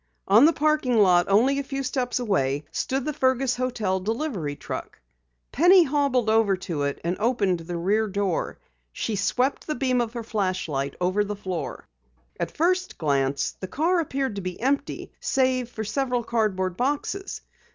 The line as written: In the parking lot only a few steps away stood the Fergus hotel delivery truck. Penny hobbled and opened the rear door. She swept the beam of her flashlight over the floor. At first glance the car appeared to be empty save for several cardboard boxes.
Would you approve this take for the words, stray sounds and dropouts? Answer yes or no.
no